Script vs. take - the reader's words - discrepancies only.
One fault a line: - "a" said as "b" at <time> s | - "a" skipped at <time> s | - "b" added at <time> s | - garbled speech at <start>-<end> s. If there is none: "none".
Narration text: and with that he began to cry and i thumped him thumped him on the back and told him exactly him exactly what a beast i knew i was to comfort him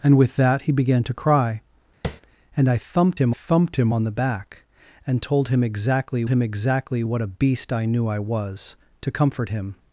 none